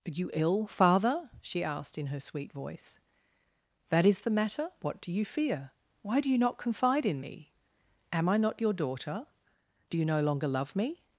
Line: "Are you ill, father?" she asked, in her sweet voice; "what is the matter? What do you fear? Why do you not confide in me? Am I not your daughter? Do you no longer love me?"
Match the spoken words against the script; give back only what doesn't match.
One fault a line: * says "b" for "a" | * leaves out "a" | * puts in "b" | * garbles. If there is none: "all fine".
* says "that" for "what"